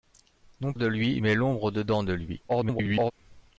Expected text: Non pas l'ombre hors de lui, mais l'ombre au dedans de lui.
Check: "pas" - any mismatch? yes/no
yes